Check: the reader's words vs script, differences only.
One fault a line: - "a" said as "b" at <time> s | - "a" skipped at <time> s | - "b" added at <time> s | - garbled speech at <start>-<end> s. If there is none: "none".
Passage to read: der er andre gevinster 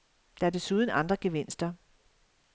- "desuden" added at 0.5 s